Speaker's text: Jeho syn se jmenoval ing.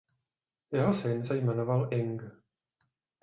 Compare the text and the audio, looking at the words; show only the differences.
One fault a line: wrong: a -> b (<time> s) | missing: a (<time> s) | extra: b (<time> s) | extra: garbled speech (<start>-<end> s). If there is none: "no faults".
no faults